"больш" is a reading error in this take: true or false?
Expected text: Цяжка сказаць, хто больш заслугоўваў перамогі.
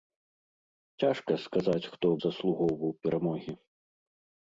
true